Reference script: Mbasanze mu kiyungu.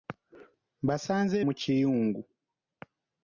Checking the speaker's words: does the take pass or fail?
pass